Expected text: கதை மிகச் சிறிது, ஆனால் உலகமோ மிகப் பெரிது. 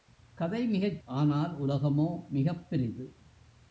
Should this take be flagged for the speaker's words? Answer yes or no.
yes